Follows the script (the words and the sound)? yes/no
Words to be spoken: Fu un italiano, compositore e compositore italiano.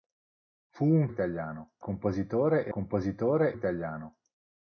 yes